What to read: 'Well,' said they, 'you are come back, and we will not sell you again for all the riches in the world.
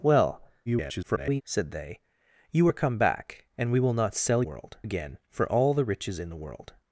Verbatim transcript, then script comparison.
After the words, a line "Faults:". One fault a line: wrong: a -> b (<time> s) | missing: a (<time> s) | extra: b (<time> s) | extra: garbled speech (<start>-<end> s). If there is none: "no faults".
'Well,' [garbled] said they, 'you are come back, and we will not sell world again for all the riches in the world.
Faults:
extra: garbled speech (0.7-1.4 s)
wrong: you -> world (4.4 s)